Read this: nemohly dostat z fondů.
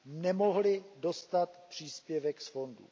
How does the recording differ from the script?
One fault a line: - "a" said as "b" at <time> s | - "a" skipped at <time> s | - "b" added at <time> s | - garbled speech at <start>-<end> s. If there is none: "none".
- "příspěvek" added at 1.7 s